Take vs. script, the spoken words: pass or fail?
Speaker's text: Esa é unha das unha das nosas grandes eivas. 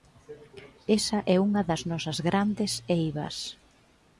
fail